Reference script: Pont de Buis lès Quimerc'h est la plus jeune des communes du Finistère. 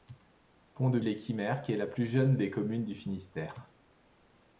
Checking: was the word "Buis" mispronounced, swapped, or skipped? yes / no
yes